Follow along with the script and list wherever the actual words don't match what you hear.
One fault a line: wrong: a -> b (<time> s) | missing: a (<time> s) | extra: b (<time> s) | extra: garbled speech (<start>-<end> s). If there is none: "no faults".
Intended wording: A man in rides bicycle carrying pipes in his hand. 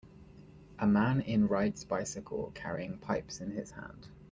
no faults